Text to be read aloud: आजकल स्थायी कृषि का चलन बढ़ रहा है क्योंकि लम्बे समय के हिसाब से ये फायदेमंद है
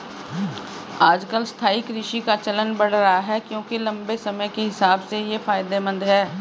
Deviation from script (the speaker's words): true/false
false